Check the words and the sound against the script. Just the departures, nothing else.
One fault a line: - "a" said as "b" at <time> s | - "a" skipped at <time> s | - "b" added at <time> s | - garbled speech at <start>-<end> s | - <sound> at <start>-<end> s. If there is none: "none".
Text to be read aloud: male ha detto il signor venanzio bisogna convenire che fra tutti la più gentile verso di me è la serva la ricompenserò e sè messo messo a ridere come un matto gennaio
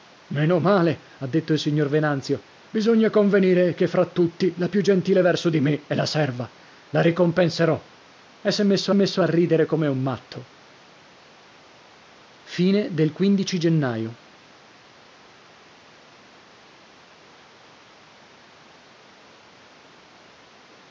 none